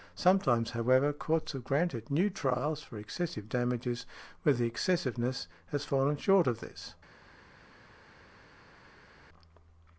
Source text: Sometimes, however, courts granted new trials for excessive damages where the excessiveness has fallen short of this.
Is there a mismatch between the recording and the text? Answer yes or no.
yes